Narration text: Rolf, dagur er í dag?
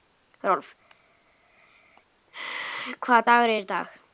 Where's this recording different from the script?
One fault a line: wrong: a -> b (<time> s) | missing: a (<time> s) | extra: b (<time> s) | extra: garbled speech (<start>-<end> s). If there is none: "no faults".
extra: hvaða (3.0 s)